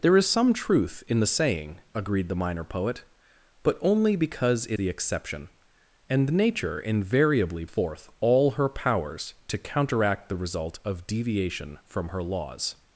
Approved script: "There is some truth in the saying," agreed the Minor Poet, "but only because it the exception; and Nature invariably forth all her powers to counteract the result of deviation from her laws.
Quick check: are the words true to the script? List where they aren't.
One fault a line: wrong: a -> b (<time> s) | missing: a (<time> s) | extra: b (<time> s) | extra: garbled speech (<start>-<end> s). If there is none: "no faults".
no faults